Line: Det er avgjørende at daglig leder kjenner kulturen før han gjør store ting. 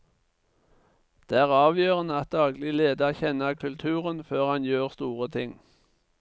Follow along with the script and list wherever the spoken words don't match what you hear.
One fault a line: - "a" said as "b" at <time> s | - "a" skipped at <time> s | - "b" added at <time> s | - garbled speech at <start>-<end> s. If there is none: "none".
none